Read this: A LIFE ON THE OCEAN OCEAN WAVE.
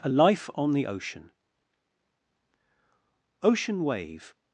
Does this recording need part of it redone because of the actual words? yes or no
no